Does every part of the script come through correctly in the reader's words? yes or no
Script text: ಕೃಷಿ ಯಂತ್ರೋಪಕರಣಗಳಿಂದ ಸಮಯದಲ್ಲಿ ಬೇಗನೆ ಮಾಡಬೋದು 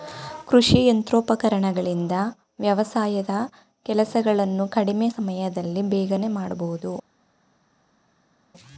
no